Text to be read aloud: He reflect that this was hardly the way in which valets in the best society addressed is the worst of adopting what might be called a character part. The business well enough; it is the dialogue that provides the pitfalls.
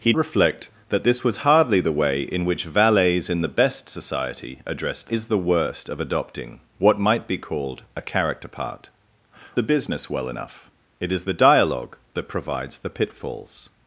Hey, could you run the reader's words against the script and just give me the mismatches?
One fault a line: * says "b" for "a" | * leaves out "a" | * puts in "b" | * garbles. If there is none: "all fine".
all fine